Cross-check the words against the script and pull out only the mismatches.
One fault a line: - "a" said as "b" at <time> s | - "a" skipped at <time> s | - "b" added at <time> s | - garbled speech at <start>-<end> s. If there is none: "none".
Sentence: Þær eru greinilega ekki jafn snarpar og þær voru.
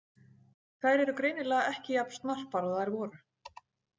none